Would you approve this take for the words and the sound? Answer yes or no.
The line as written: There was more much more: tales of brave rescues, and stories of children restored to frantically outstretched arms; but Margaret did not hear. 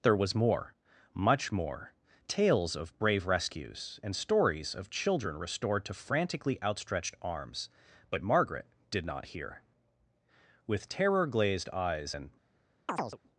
no